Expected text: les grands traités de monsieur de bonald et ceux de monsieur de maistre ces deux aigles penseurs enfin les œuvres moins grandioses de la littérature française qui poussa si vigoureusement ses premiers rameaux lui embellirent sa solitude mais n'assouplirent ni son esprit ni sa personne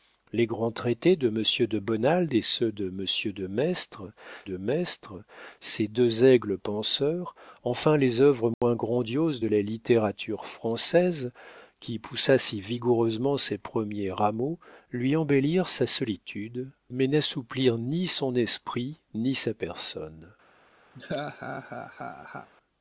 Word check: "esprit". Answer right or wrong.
right